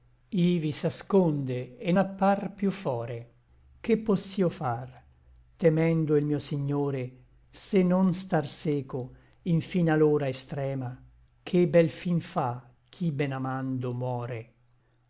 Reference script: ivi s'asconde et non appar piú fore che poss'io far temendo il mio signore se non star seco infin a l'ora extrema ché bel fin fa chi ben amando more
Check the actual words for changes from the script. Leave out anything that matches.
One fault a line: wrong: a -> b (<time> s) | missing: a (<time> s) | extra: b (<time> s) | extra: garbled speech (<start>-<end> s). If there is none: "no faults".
missing: non (1.9 s)